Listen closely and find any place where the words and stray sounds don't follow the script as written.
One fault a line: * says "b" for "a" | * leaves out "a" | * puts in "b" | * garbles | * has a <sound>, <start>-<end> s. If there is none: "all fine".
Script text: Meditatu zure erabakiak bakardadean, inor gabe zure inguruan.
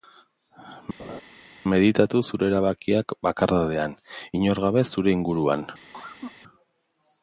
* has a laugh, 1.0-1.2 s
* has a cough, 5.9-6.4 s